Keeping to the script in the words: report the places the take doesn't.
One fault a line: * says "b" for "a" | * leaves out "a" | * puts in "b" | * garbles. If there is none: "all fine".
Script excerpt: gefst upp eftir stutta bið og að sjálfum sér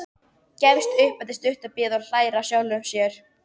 * puts in "hlær"